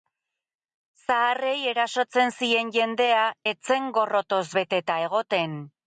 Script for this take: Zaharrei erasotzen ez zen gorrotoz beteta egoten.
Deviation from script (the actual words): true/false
true